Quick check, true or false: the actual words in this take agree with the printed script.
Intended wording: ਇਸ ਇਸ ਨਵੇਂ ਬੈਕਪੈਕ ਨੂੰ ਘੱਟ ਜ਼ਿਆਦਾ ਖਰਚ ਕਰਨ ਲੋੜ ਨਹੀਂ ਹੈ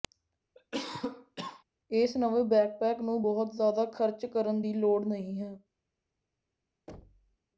false